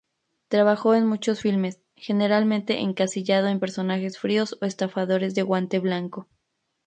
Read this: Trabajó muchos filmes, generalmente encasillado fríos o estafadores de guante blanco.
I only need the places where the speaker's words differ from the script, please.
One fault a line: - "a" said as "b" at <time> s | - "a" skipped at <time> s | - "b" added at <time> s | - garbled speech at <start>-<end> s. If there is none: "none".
- "en" added at 0.9 s
- "en personajes" added at 3.5 s